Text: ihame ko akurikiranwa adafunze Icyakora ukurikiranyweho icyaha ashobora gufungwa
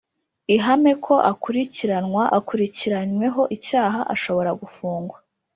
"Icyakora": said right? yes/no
no